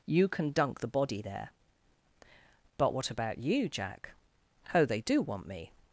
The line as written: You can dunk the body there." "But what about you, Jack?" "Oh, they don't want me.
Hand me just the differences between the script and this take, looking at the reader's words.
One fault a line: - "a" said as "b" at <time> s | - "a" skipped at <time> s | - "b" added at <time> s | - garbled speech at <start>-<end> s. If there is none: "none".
- "don't" said as "do" at 5.0 s